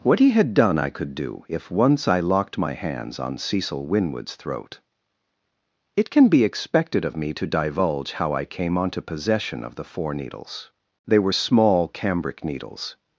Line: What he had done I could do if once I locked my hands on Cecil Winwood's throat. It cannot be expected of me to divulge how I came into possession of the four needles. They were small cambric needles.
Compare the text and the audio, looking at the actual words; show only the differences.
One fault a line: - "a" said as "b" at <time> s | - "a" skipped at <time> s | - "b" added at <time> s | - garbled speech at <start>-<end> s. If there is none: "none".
- "cannot" said as "can" at 6.1 s
- "into" said as "onto" at 8.8 s